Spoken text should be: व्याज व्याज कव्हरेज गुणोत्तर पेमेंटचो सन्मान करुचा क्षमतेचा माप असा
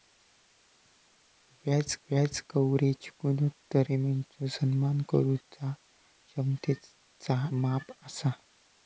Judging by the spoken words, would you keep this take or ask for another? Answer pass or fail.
pass